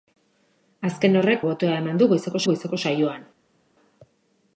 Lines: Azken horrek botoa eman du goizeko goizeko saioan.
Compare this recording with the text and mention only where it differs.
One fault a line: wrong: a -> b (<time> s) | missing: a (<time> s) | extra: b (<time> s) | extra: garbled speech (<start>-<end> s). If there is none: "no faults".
no faults